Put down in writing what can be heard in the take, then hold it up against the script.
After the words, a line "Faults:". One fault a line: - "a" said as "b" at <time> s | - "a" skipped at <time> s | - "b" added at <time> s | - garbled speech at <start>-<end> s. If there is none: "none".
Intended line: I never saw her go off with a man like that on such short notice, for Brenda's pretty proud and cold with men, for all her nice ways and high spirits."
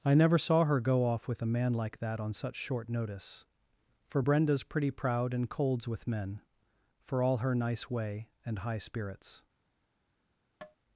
I never saw her go off with a man like that on such short notice, for Brenda's pretty proud and colds with men, for all her nice way and high spirits."
Faults:
- "cold" said as "colds" at 5.5 s
- "ways" said as "way" at 7.9 s